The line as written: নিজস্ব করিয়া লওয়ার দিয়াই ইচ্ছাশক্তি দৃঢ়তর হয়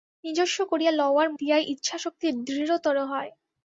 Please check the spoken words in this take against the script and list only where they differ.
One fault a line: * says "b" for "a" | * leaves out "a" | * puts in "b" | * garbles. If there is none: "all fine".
all fine